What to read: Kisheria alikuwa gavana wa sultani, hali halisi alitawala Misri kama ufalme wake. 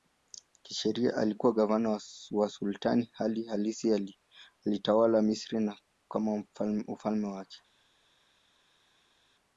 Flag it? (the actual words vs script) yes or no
no